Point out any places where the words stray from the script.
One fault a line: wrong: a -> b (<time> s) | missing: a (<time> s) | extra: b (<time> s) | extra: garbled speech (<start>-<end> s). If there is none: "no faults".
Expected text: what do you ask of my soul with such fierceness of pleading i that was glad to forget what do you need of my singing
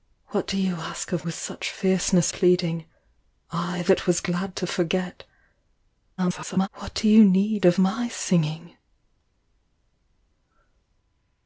missing: my soul (1.3 s)
missing: of (2.3 s)
extra: garbled speech (6.2-6.7 s)